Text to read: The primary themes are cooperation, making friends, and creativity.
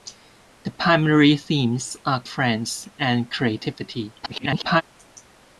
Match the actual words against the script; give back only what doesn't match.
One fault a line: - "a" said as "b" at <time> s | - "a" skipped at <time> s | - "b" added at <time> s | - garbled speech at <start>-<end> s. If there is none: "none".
- "cooperation making" skipped at 2.2 s
- garbled speech at 4.2-4.8 s